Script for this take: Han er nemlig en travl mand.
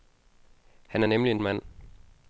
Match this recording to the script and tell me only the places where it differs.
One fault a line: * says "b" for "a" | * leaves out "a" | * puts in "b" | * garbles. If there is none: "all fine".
* leaves out "travl"